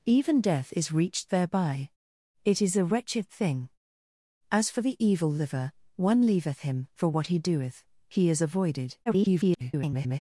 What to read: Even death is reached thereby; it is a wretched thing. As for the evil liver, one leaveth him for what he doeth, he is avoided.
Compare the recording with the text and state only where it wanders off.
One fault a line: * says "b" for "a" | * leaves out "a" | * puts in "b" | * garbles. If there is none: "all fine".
* garbles